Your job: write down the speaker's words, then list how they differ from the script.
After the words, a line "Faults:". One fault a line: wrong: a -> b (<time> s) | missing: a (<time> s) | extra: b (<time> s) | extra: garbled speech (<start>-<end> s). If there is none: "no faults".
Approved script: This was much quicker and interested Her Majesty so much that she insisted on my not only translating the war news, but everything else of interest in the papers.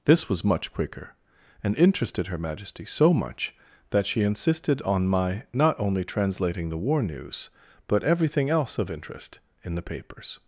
This was much quicker and interested Her Majesty so much that she insisted on my not only translating the war news, but everything else of interest in the papers.
Faults:
no faults